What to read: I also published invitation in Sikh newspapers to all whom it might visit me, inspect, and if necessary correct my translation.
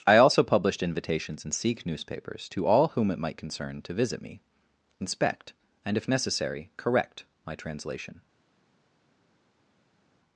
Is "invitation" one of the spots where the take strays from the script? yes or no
yes